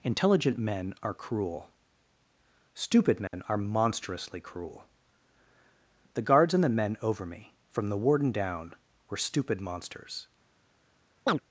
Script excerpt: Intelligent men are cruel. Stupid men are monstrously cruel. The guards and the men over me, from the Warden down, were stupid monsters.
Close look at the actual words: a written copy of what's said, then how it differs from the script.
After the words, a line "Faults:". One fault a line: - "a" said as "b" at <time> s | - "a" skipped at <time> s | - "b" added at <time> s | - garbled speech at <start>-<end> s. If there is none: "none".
Intelligent men are cruel. Stupid men are monstrously cruel. The guards and the men over me, from the Warden down, were stupid monsters.
Faults:
none